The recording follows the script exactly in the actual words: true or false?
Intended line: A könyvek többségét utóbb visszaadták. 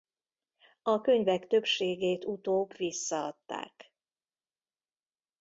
true